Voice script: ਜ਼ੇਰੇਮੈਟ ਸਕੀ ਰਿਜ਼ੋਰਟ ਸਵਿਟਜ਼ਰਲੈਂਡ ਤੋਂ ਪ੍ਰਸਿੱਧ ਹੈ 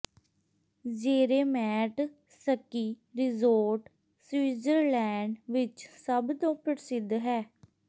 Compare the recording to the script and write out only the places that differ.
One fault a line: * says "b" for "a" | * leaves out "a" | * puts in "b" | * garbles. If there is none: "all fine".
* puts in "ਵਿਚ ਸਭ"